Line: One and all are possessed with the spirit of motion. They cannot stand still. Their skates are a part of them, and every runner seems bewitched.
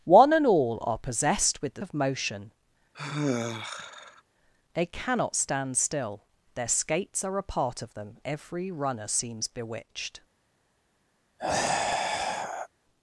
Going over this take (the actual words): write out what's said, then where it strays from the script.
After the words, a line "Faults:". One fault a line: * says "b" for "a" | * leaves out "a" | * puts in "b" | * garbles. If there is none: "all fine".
One and all are possessed with the of motion. They cannot stand still. Their skates are a part of them, every runner seems bewitched.
Faults:
* leaves out "spirit"
* leaves out "and"